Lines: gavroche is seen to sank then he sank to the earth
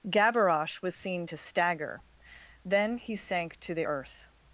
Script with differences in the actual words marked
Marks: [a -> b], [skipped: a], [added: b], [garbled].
gavroche [is -> was] seen to [sank -> stagger] then he sank to the earth